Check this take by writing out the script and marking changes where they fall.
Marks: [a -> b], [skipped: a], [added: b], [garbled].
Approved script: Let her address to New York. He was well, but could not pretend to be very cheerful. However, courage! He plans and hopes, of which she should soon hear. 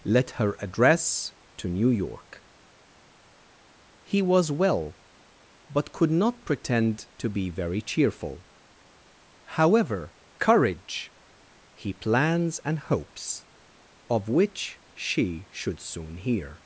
Let her address to New York. He was well, but could not pretend to be very cheerful. However, courage! He plans and hopes, of which she should soon hear.